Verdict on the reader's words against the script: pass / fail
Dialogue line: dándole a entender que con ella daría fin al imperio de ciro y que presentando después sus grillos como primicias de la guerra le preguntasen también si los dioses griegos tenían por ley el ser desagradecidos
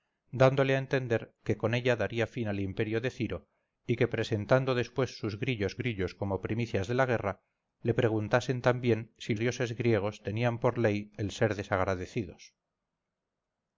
fail